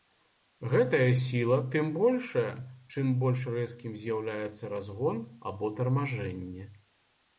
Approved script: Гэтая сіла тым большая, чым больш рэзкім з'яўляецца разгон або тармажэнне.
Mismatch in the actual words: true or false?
false